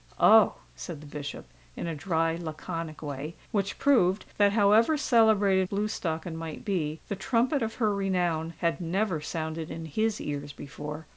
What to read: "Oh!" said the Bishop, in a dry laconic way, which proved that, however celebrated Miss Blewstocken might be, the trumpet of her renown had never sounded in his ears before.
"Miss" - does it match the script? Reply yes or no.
no